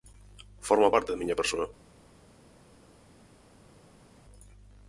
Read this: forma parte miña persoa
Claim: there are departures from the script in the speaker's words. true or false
true